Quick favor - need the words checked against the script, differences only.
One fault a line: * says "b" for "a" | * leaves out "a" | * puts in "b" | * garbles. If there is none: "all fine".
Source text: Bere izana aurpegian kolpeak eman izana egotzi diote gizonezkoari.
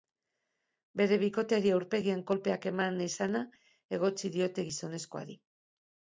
* says "bikoteari" for "izana"